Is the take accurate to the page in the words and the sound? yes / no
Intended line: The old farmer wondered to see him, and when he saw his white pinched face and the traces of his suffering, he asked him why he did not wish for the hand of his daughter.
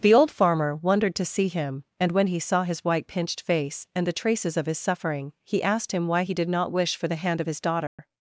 no